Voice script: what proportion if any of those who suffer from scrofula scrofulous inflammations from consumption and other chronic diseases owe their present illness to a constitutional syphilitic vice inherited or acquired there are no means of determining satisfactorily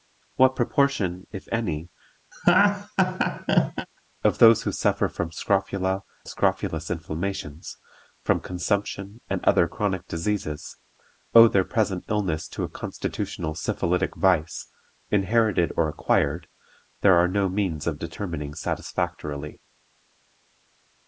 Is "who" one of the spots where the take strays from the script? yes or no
no